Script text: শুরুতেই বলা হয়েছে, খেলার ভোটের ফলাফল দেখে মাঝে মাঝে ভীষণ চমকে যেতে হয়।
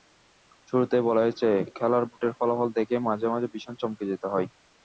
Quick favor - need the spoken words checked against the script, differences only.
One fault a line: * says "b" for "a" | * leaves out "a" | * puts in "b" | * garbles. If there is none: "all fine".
all fine